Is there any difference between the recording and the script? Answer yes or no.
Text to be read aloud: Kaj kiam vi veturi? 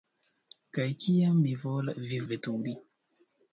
no